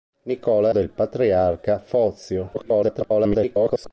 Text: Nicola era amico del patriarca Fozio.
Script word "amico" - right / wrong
wrong